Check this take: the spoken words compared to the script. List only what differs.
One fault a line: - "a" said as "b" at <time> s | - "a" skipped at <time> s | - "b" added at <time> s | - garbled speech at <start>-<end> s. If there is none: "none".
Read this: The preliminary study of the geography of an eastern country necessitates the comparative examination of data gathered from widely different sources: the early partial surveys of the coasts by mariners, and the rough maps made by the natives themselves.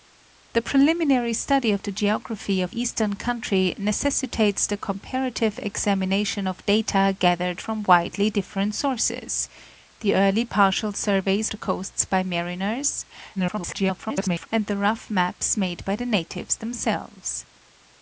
- "an" skipped at 2.8 s
- "of" skipped at 11.5 s
- garbled speech at 13.4-14.5 s